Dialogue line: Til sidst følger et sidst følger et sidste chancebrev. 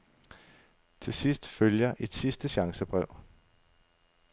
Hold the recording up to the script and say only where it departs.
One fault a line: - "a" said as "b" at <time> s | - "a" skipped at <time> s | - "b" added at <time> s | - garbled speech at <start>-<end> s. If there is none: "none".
- "sidst følger et" skipped at 2.1 s